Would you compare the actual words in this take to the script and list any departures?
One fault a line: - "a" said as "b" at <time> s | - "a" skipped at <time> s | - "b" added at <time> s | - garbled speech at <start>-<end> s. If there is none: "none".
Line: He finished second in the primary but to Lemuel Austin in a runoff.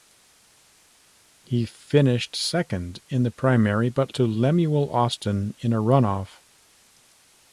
none